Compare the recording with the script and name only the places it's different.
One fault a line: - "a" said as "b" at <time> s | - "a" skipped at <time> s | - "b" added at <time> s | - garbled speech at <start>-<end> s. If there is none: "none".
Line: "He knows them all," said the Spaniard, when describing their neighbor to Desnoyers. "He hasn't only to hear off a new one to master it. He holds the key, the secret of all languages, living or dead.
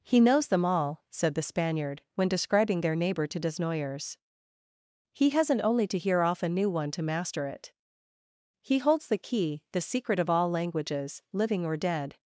none